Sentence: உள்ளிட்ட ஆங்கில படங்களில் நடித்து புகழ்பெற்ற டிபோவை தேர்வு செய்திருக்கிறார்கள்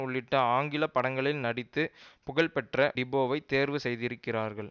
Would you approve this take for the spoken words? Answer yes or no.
yes